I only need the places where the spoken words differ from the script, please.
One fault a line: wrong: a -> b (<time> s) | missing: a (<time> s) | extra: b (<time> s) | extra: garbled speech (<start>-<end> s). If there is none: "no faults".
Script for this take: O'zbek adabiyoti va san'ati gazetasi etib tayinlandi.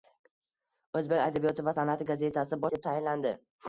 no faults